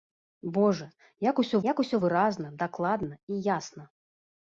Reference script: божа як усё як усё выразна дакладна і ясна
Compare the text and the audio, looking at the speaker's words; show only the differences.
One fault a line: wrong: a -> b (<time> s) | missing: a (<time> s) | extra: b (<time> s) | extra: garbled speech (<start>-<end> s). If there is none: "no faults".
no faults